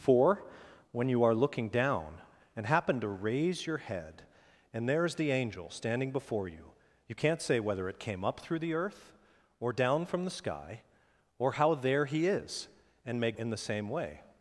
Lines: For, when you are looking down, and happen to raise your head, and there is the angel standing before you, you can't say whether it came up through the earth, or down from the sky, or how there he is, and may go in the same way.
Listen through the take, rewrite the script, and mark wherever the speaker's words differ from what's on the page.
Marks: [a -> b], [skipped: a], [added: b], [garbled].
For, when you are looking down, and happen to raise your head, and there is the angel standing before you, you can't say whether it came up through the earth, or down from the sky, or how there he is, and may [skipped: go] in the same way.